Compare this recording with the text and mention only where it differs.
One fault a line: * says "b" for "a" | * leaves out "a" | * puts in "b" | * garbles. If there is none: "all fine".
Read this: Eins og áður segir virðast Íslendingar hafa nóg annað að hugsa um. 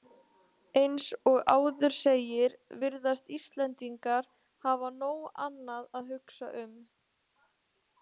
all fine